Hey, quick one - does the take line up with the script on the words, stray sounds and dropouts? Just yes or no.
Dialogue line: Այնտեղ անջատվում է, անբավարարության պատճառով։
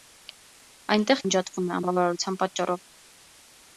yes